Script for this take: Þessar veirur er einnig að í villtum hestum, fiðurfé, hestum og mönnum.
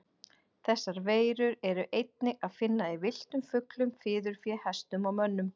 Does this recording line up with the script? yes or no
no